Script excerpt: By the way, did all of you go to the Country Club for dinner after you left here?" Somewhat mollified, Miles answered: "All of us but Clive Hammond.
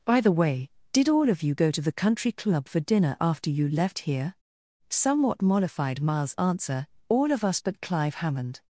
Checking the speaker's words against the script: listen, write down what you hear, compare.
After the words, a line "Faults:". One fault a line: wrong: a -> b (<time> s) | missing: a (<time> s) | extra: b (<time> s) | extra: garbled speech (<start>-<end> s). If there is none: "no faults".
By the way, did all of you go to the Country Club for dinner after you left here?" Somewhat mollified, Miles answer: "All of us but Clive Hammond.
Faults:
wrong: answered -> answer (6.4 s)